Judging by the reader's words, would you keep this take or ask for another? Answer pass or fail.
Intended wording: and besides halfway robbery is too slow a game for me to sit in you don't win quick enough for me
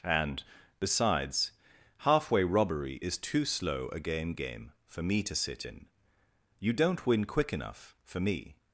fail